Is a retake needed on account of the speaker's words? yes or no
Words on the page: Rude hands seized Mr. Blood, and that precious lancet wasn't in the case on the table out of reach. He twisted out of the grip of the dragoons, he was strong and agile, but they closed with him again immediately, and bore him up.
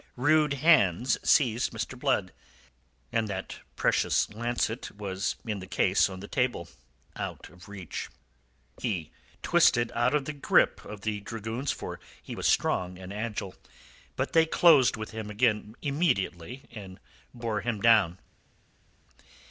yes